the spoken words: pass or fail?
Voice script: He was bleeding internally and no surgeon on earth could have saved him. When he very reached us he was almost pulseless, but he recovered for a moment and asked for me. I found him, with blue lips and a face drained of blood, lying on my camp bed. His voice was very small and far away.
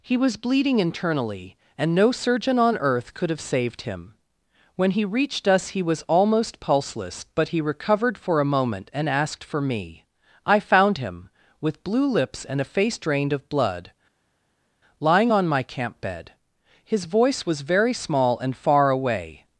fail